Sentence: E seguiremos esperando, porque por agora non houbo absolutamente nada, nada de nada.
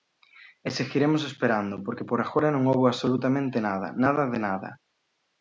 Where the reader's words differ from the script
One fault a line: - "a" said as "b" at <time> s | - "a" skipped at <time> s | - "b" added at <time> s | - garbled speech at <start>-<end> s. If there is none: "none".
none